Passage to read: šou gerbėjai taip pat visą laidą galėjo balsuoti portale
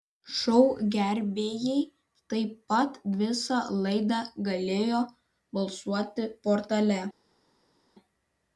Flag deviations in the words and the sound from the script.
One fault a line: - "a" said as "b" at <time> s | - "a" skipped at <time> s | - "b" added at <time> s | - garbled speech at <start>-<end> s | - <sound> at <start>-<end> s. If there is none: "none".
none